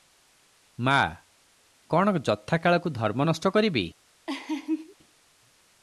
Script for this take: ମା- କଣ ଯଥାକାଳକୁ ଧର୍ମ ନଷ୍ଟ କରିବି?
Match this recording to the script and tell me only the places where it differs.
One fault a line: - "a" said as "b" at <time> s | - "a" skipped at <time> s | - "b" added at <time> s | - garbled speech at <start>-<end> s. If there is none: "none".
none